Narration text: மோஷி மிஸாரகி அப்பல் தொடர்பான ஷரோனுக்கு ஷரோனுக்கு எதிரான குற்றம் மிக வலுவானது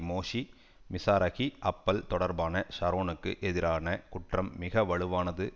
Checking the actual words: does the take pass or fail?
fail